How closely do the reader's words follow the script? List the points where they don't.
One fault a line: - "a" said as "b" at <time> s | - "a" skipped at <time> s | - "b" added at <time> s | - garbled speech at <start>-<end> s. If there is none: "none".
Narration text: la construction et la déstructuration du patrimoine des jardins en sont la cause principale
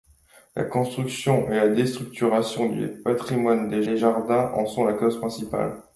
- "des" added at 3.8 s